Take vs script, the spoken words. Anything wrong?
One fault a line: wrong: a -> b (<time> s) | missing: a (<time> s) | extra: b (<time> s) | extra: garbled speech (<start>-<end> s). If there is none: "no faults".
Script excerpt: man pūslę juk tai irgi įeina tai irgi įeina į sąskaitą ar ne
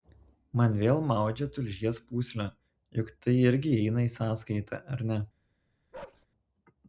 wrong: pūslę juk tai irgi įeina -> vėl maudžia tulžies pūslę juk (0.8 s)